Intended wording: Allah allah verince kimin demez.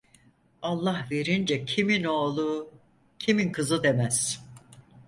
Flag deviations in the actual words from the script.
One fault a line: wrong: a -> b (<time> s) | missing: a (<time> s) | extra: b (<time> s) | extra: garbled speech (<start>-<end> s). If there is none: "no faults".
missing: allah (1.1 s)
extra: oğlu kimin kızı (2.0 s)